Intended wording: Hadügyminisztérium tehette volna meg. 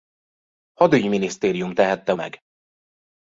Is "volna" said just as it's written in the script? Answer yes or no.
no